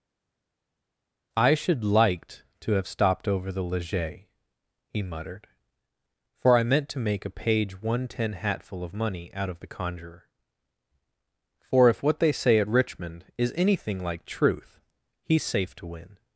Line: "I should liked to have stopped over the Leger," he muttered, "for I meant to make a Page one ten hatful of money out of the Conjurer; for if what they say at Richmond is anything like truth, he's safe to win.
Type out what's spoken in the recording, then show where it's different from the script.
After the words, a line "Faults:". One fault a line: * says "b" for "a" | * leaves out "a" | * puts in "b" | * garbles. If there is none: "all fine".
"I should liked to have stopped over the Leger," he muttered, "for I meant to make a Page one ten hatful of money out of the Conjurer; for if what they say at Richmond is anything like truth, he's safe to win.
Faults:
all fine